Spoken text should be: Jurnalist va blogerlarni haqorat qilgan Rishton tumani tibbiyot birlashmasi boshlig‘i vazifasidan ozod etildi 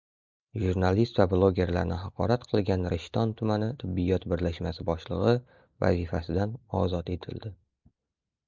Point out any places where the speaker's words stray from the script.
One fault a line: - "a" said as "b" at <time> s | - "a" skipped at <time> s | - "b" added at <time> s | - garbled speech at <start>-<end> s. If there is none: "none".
none